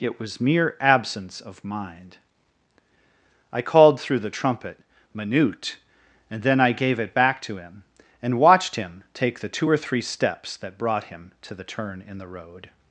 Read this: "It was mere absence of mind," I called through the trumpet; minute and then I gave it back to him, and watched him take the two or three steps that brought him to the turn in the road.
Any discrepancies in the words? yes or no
no